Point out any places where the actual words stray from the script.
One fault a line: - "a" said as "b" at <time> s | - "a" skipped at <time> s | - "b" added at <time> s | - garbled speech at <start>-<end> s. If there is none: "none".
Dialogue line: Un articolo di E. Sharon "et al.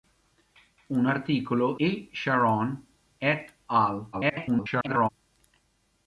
- "di" skipped at 1.8 s
- garbled speech at 4.1-5.1 s